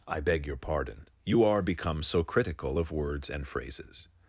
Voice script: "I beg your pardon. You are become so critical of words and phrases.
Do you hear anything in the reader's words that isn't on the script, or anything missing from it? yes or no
no